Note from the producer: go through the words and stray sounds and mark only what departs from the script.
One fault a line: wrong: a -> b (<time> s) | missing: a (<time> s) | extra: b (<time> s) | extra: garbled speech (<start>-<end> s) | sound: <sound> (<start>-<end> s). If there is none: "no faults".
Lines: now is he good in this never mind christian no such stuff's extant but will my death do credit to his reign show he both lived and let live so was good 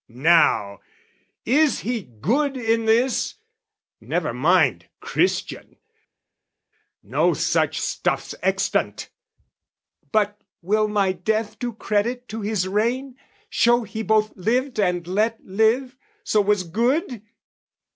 no faults